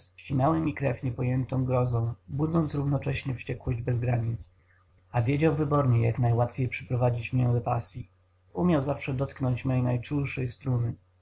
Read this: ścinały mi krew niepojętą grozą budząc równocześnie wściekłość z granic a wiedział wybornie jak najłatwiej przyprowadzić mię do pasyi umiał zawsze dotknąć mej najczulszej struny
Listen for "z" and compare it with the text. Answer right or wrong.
wrong